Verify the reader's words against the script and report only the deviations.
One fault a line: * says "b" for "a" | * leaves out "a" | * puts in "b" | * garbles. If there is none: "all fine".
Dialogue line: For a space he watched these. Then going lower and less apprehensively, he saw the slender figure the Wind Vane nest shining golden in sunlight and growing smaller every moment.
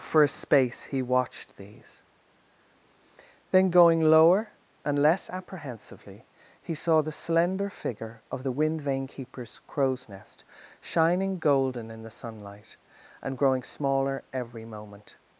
* puts in "of"
* puts in "keeper's crow's"
* puts in "the"